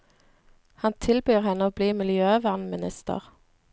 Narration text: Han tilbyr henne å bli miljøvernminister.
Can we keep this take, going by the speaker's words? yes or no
yes